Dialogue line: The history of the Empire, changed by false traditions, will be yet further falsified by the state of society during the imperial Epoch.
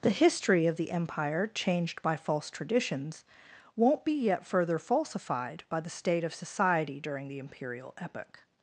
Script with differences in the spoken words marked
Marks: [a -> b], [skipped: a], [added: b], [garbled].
The history of the Empire, changed by false traditions, [will -> won't] be yet further falsified by the state of society during the imperial Epoch.